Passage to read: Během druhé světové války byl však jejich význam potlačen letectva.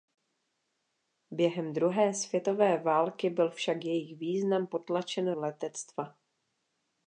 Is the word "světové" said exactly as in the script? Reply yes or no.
yes